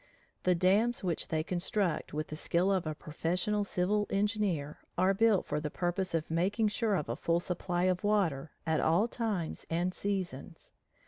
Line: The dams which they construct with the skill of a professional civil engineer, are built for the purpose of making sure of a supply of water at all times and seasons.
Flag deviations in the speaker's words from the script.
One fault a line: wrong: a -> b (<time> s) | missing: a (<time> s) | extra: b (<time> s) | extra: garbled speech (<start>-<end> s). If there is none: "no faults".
extra: full (7.2 s)